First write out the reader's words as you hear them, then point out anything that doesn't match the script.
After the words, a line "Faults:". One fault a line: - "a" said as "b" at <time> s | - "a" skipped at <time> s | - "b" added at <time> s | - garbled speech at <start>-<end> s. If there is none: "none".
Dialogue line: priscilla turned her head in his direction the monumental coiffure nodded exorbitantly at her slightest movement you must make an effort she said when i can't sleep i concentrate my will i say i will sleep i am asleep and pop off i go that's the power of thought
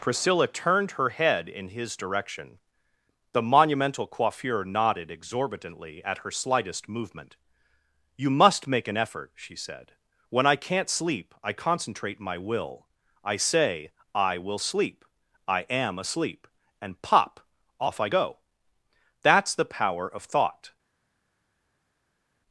priscilla turned her head in his direction the monumental coiffure nodded exorbitantly at her slightest movement you must make an effort she said when i can't sleep i concentrate my will i say i will sleep i am asleep and pop off i go that's the power of thought
Faults:
none